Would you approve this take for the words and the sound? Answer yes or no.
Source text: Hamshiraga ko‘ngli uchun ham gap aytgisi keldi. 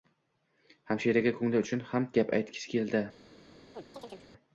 no